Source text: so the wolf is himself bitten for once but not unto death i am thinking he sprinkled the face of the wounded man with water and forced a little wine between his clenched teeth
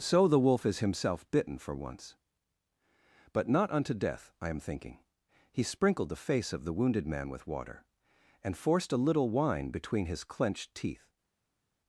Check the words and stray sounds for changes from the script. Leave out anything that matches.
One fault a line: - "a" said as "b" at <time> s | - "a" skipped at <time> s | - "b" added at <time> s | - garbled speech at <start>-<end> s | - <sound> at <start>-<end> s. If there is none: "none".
none